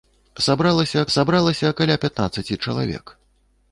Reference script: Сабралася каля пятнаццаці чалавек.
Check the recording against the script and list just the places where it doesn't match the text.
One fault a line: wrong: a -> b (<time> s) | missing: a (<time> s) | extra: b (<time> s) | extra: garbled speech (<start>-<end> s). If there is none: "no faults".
extra: сабралася (1.1 s)